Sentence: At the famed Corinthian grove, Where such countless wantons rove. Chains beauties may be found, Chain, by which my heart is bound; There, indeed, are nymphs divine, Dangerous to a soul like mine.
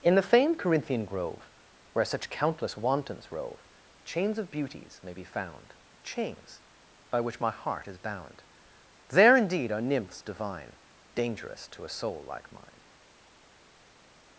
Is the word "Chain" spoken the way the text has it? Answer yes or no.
no